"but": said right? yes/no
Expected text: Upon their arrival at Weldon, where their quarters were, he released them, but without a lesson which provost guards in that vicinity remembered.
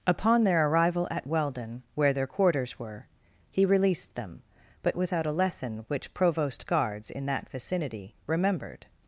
yes